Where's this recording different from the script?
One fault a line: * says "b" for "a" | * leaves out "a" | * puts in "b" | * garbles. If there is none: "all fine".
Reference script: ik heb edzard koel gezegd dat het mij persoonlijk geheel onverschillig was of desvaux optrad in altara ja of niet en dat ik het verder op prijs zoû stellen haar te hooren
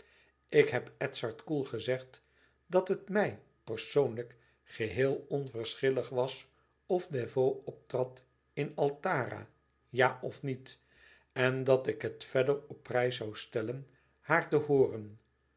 all fine